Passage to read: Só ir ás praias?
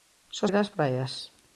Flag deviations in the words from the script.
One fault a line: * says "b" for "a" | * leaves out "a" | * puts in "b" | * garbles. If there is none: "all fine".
all fine